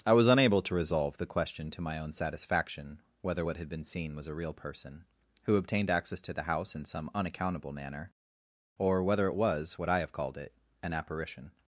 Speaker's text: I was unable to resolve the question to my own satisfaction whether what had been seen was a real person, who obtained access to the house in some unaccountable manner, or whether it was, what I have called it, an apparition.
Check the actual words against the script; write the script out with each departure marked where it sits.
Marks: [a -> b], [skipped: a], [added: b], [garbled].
I was unable to resolve the question to my own satisfaction whether what had been seen was a real person, who obtained access to the house in some unaccountable manner, or whether it was, what I have called it, an apparition.